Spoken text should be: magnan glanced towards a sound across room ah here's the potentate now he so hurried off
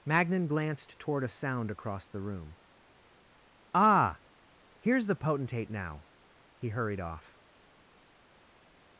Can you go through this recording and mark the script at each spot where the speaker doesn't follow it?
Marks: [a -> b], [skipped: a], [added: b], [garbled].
magnan glanced [towards -> toward] a sound across [added: the] room ah here's the potentate now he [skipped: so] hurried off